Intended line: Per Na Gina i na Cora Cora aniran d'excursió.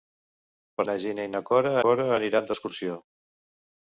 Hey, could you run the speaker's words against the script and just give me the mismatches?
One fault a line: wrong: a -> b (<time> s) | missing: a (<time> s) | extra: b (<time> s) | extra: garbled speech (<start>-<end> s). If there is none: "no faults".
no faults